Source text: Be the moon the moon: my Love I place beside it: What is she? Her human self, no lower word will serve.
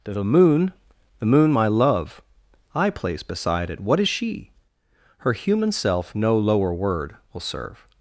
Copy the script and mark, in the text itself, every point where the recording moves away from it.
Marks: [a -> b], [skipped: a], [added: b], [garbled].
[skipped: Be] the moon the moon: my Love I place beside it: What is she? Her human self, no lower word will serve.